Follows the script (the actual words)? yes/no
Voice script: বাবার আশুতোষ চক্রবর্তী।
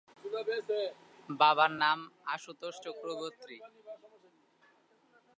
no